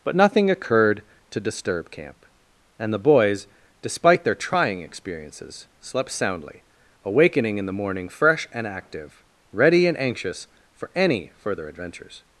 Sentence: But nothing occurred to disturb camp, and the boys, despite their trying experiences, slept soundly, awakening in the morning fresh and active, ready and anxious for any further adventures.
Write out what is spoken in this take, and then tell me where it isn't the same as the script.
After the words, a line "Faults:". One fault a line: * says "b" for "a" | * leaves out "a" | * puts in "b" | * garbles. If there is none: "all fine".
But nothing occurred to disturb camp, and the boys, despite their trying experiences, slept soundly, awakening in the morning fresh and active, ready and anxious for any further adventures.
Faults:
all fine